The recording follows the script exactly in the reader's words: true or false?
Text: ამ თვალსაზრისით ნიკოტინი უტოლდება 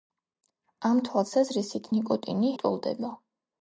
true